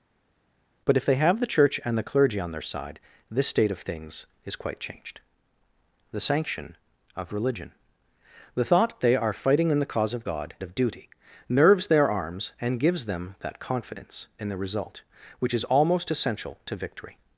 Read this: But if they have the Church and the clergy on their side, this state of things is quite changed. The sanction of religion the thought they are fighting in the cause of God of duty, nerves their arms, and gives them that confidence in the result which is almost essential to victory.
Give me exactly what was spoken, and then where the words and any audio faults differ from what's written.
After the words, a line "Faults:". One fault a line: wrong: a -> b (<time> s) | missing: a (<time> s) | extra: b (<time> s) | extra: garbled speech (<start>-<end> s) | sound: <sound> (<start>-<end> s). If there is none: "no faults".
But if they have the Church and the clergy on their side, this state of things is quite changed. The sanction of religion the thought they are fighting in the cause of God of duty, nerves their arms, and gives them that confidence in the result which is almost essential to victory.
Faults:
no faults